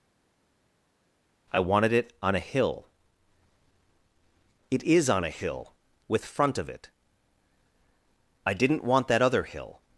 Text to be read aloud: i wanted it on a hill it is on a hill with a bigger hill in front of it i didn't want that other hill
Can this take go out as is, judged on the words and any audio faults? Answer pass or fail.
fail